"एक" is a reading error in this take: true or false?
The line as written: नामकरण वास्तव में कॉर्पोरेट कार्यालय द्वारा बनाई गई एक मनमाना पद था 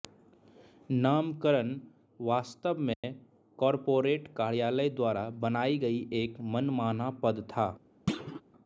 false